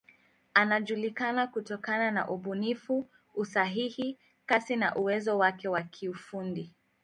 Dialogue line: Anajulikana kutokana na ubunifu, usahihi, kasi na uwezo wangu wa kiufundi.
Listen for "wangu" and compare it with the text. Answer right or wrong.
wrong